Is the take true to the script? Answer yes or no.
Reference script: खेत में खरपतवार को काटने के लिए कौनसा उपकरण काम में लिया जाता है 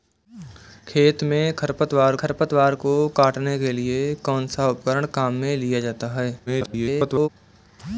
no